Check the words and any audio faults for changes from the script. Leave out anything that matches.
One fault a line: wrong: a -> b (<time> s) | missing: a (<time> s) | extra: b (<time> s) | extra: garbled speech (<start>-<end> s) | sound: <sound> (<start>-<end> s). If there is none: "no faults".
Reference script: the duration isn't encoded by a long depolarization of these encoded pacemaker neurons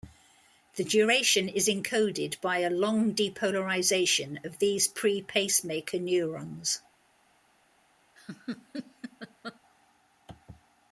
wrong: isn't -> is (1.5 s)
wrong: encoded -> pre (4.9 s)
sound: laugh (8.2-9.6 s)